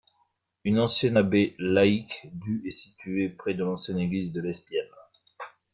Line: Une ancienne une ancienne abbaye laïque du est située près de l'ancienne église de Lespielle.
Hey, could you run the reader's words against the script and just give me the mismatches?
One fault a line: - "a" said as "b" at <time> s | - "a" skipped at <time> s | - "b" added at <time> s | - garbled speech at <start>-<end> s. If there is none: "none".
- "une ancienne" skipped at 1.2 s